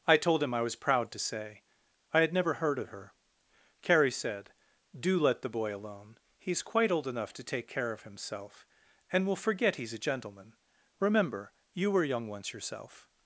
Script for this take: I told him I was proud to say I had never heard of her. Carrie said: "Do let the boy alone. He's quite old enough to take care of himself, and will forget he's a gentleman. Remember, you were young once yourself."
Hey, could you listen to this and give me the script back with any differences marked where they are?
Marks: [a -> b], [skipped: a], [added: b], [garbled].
I told him I was proud to say I had never heard of her. Carrie said: "Do let the boy alone. He's quite old enough to take care of himself, and will forget he's a gentleman. Remember, you were young once yourself."